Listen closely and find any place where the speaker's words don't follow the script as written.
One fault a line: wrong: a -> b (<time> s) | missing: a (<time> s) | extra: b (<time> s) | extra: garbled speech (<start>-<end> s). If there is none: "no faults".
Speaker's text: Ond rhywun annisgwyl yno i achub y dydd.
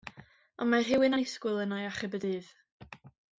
extra: mae (0.7 s)